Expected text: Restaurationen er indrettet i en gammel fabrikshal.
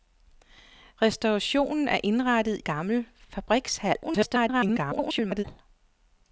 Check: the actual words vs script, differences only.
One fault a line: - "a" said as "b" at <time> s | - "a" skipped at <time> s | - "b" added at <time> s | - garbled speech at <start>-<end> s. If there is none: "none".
- "i en" skipped at 2.6 s
- garbled speech at 4.0-5.4 s